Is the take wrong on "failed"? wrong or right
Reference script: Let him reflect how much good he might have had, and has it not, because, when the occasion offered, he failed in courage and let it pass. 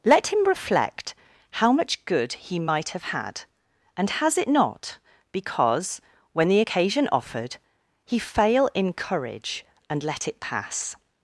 wrong